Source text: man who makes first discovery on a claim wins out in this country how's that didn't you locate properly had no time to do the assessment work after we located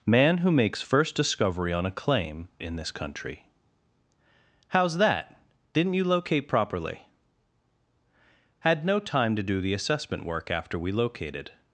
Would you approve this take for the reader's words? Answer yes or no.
no